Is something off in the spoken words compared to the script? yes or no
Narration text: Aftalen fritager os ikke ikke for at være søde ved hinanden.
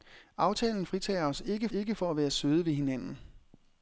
no